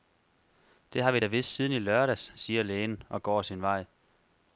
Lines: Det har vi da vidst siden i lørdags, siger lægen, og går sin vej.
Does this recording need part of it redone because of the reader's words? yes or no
no